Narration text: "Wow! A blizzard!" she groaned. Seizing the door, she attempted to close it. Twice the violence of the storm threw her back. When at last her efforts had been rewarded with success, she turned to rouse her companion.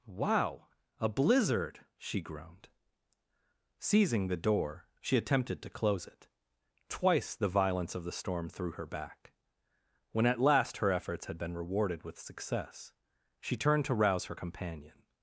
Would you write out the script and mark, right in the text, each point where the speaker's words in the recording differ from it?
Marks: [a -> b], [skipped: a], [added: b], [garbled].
"Wow! A blizzard!" she groaned. Seizing the door, she attempted to close it. Twice the violence of the storm threw her back. When at last her efforts had been rewarded with success, she turned to rouse her companion.